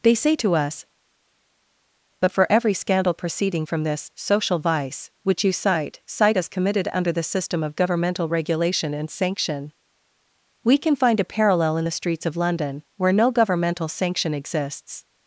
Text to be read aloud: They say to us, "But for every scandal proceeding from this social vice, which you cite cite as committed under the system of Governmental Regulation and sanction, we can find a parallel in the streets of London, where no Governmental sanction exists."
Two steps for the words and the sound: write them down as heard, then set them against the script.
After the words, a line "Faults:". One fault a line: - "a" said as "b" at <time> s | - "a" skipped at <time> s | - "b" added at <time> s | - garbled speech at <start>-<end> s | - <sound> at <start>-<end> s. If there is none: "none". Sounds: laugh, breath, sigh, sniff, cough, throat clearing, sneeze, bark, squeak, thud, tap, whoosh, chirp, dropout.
They say to us, "But for every scandal proceeding from this social vice, which you cite cite as committed under the system of Governmental Regulation and sanction, we can find a parallel in the streets of London, where no Governmental sanction exists."
Faults:
none